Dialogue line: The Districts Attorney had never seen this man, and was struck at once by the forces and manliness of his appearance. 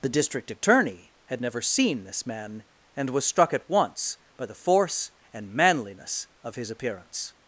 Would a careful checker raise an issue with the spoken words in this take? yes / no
yes